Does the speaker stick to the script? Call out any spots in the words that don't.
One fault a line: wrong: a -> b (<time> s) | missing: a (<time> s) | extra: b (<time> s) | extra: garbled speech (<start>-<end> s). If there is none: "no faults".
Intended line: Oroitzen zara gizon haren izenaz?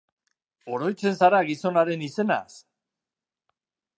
no faults